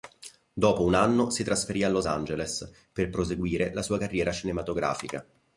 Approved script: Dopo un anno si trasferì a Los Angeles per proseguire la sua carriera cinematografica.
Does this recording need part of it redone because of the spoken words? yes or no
no